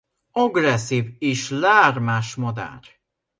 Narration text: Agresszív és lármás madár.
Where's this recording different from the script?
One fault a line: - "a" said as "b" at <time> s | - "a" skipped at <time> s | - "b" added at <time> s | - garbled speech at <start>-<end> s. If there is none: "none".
none